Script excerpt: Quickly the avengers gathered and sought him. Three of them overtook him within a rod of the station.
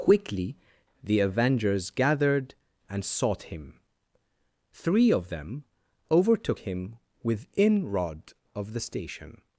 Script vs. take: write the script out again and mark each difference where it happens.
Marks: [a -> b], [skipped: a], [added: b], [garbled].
Quickly the avengers gathered and sought him. Three of them overtook him within [skipped: a] rod of the station.